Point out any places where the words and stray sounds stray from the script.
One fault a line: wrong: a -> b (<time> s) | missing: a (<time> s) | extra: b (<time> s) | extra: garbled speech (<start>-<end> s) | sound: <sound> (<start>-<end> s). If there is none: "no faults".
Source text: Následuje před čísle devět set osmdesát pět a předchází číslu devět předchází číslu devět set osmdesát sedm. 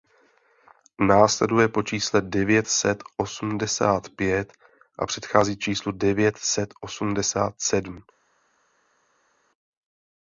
wrong: před -> po (1.7 s)
missing: předchází číslu devět (6.4 s)